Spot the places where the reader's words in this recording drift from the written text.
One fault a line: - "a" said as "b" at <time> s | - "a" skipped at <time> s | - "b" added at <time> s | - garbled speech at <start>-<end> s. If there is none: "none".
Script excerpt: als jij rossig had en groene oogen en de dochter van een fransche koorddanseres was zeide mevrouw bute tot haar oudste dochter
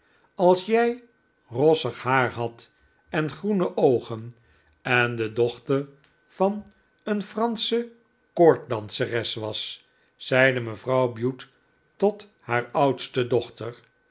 - "haar" added at 2.0 s